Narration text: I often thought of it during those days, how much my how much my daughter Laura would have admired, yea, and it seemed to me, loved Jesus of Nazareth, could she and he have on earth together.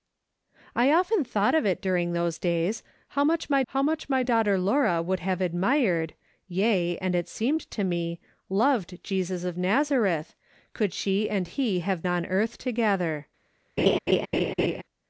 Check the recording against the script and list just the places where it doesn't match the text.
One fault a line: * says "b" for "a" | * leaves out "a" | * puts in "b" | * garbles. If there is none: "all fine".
all fine